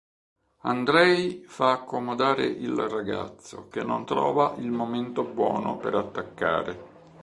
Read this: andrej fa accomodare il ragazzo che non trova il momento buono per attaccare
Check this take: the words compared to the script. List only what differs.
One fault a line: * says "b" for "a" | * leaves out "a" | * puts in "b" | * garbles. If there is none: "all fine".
all fine